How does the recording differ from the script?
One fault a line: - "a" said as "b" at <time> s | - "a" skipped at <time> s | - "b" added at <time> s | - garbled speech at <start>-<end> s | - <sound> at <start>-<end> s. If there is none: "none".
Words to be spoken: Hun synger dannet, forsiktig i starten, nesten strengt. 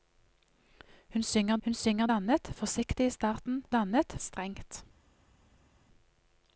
- "hun synger" added at 1.6 s
- "nesten" said as "dannet" at 3.7 s